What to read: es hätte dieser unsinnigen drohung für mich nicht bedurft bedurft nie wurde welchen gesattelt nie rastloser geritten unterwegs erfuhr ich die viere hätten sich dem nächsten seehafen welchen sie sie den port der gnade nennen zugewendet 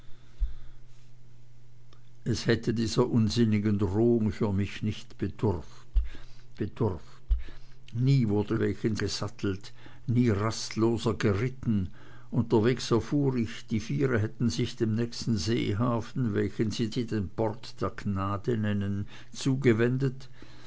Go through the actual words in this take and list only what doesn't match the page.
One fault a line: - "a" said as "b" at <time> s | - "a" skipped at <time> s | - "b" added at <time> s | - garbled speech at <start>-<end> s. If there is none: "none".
none